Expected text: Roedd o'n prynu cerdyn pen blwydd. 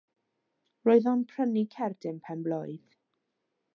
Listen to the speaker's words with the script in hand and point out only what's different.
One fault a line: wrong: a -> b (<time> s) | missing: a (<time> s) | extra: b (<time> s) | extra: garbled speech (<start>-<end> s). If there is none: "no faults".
no faults